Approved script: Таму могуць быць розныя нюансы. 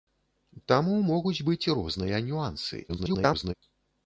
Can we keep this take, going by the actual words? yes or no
no